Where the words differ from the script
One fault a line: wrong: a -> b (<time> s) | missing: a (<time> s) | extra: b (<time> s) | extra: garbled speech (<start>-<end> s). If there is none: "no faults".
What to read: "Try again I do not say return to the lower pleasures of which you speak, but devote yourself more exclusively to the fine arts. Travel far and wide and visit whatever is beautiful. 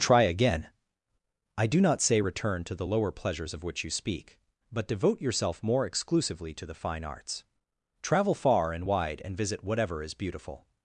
no faults